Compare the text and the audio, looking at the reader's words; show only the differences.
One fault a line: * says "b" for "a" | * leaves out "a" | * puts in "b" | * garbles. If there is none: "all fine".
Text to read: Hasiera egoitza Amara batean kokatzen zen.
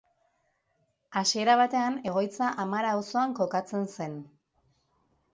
* puts in "batean"
* says "auzoan" for "batean"